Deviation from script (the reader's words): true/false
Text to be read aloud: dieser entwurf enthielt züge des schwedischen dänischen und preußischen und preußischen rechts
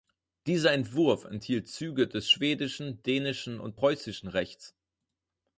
true